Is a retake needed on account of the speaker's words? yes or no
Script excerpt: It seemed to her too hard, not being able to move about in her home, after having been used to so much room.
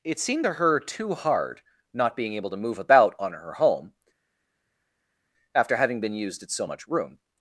yes